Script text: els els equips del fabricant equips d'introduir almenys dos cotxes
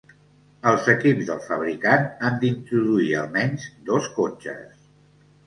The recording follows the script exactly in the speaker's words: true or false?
false